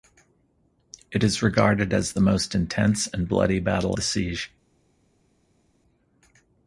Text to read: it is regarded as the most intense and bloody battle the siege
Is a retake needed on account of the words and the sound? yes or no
no